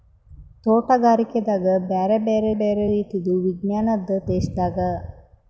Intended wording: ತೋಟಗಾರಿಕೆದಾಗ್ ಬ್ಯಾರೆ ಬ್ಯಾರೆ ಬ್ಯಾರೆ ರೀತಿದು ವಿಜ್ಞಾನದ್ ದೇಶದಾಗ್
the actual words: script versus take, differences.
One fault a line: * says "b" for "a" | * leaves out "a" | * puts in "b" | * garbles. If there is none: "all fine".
all fine